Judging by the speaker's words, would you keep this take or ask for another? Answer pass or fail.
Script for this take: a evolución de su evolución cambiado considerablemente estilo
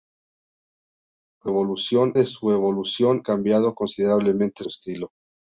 pass